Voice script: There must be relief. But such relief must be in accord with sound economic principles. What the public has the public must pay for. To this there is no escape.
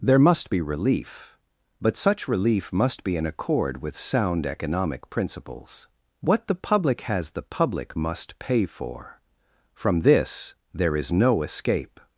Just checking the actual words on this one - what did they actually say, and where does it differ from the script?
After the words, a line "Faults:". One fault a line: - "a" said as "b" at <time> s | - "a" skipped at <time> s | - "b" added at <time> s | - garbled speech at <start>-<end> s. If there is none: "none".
There must be relief. But such relief must be in accord with sound economic principles. What the public has the public must pay for. From this there is no escape.
Faults:
- "To" said as "From" at 9.7 s